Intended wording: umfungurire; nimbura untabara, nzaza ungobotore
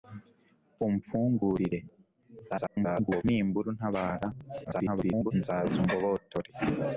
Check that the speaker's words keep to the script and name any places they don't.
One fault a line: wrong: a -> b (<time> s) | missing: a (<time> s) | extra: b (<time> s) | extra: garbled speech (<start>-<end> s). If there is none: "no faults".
extra: garbled speech (2.5-3.2 s)
extra: garbled speech (4.6-5.3 s)